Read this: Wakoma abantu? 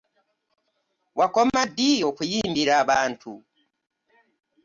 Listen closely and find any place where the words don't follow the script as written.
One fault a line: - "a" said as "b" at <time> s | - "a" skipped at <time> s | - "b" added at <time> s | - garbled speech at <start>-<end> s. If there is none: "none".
- "ddi okuyimbira" added at 1.7 s